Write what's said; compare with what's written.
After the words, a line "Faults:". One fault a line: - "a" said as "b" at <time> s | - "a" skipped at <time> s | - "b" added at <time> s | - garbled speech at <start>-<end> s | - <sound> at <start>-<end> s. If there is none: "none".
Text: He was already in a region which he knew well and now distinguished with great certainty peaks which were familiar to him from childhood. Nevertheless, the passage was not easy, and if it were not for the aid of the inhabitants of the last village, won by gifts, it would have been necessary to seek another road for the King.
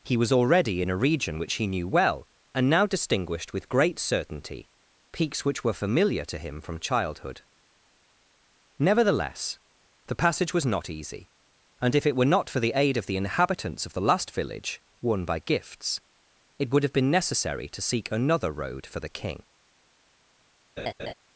He was already in a region which he knew well and now distinguished with great certainty peaks which were familiar to him from childhood. Nevertheless, the passage was not easy, and if it were not for the aid of the inhabitants of the last village, won by gifts, it would have been necessary to seek another road for the King.
Faults:
- laugh at 20.8-21.1 s